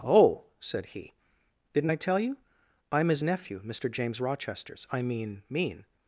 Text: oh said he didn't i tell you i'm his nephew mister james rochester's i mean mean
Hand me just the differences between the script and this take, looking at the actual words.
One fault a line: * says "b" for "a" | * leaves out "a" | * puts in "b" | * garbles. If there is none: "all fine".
all fine